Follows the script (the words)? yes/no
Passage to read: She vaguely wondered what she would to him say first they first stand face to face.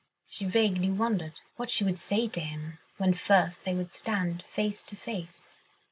no